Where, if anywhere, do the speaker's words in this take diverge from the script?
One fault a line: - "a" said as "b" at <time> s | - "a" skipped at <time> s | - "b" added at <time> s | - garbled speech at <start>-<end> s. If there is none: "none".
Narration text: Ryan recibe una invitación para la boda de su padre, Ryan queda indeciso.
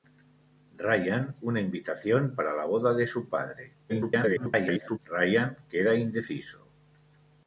- "recibe" skipped at 1.4 s
- garbled speech at 3.9-5.0 s